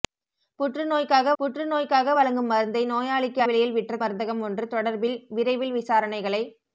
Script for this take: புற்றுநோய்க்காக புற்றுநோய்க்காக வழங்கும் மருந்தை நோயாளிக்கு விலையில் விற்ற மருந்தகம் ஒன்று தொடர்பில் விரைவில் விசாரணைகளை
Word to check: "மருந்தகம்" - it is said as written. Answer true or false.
true